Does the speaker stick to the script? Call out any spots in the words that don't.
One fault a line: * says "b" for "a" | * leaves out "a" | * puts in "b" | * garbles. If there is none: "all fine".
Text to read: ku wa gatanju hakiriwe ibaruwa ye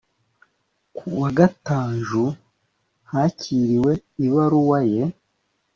all fine